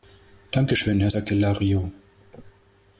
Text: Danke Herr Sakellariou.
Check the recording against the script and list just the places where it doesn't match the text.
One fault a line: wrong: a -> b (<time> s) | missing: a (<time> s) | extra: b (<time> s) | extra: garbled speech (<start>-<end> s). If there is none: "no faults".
extra: schön (0.7 s)